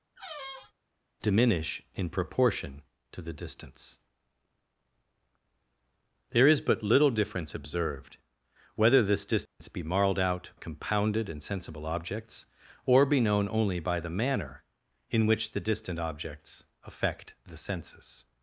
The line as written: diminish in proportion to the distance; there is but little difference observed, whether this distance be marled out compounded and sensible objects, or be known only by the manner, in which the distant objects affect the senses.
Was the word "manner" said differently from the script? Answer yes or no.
no